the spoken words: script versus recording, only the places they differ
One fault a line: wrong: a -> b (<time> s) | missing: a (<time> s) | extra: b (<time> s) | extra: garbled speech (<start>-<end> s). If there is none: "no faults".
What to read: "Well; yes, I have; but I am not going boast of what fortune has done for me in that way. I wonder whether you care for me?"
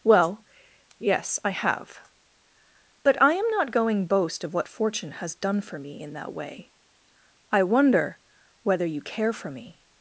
no faults